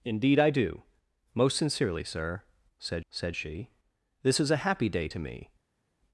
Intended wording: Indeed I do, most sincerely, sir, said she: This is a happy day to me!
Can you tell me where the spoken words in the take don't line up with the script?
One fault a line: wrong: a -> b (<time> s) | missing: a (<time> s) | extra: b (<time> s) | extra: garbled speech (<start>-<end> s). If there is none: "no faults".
extra: said (3.1 s)